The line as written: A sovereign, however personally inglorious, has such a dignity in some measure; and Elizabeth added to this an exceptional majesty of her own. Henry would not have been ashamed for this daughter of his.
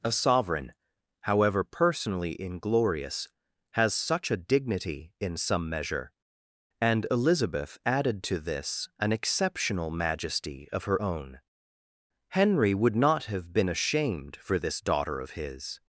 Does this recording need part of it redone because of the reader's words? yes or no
no